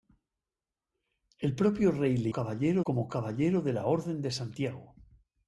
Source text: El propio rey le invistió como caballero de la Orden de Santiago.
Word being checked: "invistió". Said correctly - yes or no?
no